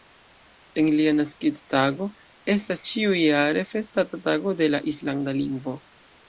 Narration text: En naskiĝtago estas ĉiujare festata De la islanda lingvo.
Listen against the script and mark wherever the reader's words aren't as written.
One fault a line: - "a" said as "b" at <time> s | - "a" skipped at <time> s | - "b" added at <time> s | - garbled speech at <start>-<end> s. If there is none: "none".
- "lia" added at 1.0 s
- "Tago" added at 4.3 s